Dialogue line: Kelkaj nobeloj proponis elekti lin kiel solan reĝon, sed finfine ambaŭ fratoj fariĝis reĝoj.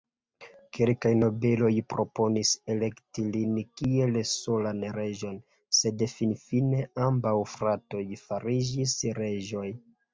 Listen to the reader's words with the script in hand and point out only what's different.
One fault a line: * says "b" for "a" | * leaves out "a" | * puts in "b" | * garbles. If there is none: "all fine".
all fine